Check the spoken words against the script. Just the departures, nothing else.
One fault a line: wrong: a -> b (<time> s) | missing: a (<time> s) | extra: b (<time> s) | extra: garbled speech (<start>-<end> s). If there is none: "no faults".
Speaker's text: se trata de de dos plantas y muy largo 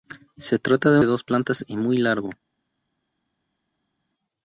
no faults